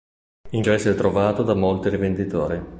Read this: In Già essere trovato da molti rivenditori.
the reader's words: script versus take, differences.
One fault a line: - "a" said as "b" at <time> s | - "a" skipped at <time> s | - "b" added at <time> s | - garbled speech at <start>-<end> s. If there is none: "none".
none